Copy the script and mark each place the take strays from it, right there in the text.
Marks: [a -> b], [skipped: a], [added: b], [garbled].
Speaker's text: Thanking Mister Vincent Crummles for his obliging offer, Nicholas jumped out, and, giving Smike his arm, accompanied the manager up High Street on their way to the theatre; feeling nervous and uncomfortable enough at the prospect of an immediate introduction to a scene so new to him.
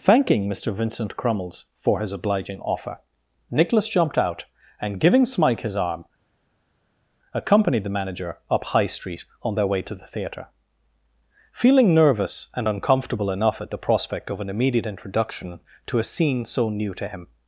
Thanking Mister Vincent Crummles for his obliging offer, Nicholas jumped out, and, giving Smike his arm, accompanied the manager up High Street on their way to the theatre; feeling nervous and uncomfortable enough at the prospect of an immediate introduction to a scene so new to him.